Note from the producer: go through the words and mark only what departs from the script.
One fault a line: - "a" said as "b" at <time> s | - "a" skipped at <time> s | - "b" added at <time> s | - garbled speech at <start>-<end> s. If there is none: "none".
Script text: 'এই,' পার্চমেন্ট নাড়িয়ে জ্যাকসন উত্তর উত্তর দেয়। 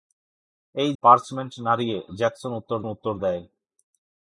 none